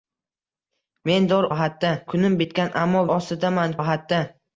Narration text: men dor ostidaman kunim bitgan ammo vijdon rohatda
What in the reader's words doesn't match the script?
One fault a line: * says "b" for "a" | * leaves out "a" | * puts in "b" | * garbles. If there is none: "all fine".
* says "rohatda" for "ostidaman"
* says "ostidaman" for "vijdon"